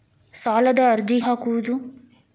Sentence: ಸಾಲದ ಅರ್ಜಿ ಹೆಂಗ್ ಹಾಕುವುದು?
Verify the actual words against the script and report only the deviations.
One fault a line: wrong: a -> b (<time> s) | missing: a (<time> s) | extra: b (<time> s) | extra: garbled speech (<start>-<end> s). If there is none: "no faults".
missing: ಹೆಂಗ್ (1.2 s)